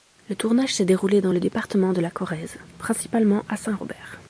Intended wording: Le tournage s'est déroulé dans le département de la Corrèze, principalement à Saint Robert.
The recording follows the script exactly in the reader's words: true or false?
true